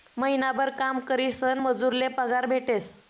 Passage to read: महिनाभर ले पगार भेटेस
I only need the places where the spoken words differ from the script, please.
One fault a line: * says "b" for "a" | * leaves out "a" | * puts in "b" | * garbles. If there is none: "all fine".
* puts in "काम करीसन मजूर"